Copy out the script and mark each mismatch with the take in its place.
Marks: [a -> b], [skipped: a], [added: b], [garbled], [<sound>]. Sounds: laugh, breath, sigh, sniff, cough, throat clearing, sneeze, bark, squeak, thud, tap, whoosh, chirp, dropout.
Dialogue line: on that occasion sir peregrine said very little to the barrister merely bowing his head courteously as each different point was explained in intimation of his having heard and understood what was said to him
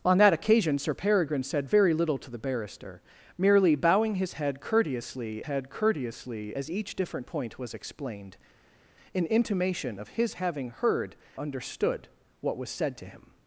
on that occasion sir peregrine said very little to the barrister merely bowing his head courteously [added: head courteously] as each different point was explained in intimation of his having heard [skipped: and] understood what was said to him